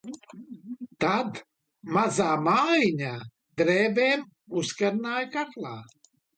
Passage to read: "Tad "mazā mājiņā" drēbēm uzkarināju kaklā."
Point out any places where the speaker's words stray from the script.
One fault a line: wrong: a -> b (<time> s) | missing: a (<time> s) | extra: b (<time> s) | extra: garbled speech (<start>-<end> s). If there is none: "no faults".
no faults